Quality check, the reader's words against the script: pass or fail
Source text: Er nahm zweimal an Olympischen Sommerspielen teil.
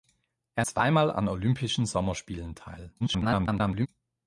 fail